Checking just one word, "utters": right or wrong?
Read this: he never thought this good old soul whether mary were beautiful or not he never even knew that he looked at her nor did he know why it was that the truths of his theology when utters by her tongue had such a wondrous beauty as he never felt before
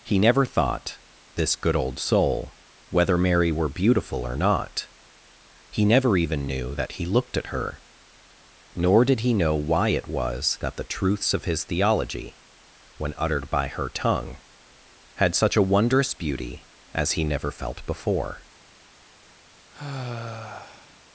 wrong